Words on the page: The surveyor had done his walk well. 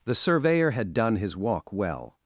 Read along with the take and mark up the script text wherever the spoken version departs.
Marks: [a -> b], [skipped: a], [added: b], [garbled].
The surveyor had done his walk well.